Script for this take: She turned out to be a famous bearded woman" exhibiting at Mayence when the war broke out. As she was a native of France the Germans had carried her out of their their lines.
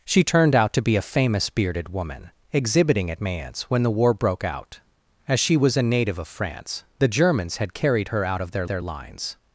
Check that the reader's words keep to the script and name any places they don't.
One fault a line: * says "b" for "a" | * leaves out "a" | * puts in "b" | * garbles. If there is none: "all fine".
all fine